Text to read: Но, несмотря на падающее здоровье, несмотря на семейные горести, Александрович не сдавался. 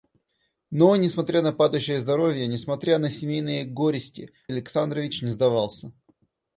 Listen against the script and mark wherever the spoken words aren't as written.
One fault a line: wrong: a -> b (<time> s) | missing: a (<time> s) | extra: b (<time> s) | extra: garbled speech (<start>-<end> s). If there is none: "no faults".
no faults